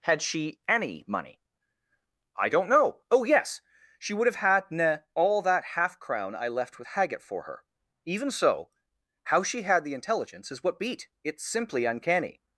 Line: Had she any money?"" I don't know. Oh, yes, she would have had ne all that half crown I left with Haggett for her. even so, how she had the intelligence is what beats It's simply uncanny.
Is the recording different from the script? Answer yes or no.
yes